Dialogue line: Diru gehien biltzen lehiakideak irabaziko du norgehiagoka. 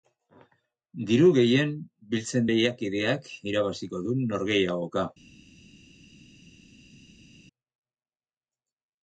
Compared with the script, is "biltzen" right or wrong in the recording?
right